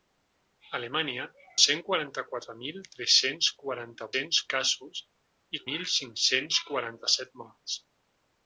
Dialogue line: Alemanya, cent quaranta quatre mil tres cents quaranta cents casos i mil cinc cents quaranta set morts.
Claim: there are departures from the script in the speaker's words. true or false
false